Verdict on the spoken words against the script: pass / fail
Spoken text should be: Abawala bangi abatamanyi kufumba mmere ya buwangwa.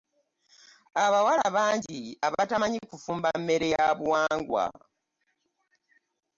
pass